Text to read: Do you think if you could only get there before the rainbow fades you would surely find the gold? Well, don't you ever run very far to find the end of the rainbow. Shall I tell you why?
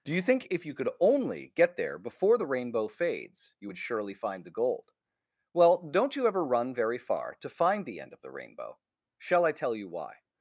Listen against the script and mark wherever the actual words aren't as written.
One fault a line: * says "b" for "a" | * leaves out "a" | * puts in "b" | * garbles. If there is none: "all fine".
all fine